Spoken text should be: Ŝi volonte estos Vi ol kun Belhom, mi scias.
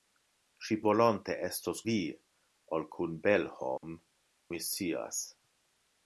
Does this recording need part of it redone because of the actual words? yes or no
no